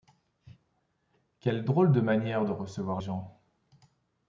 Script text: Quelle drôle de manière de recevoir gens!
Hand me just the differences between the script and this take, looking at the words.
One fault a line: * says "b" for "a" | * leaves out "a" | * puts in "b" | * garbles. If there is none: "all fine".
all fine